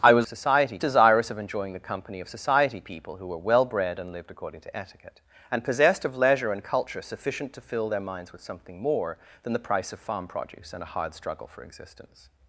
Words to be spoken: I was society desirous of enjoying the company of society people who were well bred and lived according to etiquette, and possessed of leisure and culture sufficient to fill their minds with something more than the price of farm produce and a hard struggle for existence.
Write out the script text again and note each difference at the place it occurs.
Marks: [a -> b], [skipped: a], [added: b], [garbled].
I was society desirous of enjoying the company of society people who were well bred and lived according to etiquette, and possessed of leisure and culture sufficient to fill their minds with something more than the price of farm produce and a hard struggle for existence.